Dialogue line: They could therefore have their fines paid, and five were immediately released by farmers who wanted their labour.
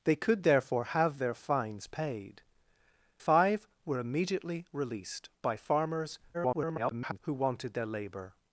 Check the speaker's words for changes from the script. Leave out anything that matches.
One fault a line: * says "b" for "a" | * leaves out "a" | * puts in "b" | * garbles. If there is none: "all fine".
* leaves out "and"
* garbles